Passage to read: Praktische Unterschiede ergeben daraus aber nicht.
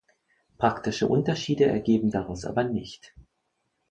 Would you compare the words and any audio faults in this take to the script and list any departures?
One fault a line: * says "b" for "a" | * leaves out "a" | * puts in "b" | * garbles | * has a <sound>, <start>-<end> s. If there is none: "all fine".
all fine